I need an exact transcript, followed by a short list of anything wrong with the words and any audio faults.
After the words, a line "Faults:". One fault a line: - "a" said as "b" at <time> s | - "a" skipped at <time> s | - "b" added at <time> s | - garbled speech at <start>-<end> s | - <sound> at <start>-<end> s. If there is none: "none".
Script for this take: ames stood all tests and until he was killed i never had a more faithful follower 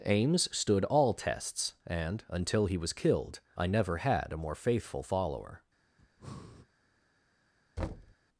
ames stood all tests and until he was killed i never had a more faithful follower
Faults:
- breath at 6.0-6.7 s
- thud at 7.8-8.1 s